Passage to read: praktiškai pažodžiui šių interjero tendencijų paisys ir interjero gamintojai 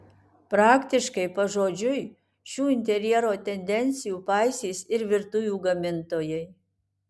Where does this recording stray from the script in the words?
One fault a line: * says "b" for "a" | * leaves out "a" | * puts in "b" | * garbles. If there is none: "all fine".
* says "virtuvių" for "interjero"